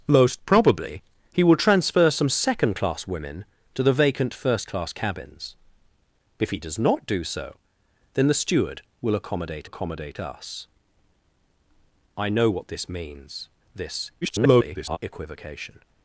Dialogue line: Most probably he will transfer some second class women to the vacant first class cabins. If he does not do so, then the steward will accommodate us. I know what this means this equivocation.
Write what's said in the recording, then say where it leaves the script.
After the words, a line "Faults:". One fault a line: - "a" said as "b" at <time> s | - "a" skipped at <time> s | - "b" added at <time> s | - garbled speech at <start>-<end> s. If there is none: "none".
Most probably he will transfer some second class women to the vacant first class cabins. If he does not do so, then the steward will accommodate accommodate us. I know what this means this [garbled] equivocation.
Faults:
- "accommodate" added at 9.6 s
- garbled speech at 14.2-15.0 s